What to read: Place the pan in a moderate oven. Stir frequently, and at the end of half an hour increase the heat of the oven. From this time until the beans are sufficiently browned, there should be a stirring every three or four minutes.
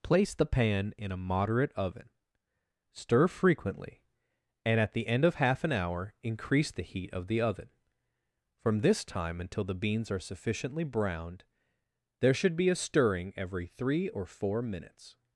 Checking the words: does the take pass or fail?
pass